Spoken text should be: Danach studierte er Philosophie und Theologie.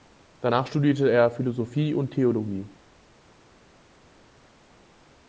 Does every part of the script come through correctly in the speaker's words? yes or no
yes